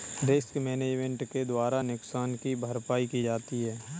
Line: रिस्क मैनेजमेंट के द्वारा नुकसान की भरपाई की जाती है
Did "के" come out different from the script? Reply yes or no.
no